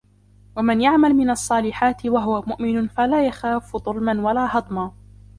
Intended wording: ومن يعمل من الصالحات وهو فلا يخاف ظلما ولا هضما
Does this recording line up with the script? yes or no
no